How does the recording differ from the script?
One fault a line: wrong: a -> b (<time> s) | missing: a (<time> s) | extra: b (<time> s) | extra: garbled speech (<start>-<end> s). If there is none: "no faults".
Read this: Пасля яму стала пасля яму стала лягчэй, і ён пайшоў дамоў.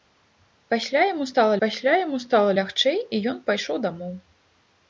no faults